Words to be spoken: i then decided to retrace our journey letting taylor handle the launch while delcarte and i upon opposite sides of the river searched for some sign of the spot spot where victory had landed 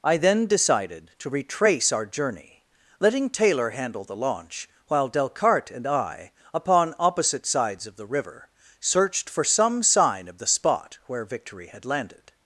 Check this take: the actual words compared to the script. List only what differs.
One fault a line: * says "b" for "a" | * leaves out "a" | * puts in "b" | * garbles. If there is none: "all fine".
* leaves out "spot"